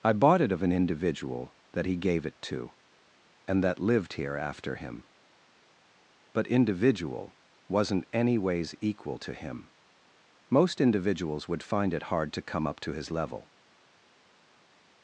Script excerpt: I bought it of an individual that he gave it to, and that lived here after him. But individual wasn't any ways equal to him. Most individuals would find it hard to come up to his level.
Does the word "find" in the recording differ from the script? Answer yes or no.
no